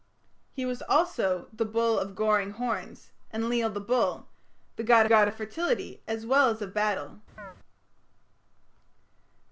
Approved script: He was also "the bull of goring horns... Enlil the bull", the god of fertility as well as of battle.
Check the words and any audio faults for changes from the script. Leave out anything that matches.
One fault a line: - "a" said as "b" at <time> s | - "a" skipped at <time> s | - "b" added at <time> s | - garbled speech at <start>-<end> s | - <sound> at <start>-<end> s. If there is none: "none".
- "god" added at 5.1 s
- chirp at 7.4-7.6 s